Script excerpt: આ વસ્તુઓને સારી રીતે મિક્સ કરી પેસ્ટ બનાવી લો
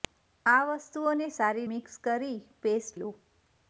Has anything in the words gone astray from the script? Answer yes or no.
yes